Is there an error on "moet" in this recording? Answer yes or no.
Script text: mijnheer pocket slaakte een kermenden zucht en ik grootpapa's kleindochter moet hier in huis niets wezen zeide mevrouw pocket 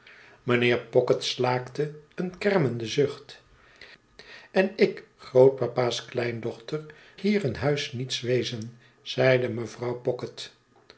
yes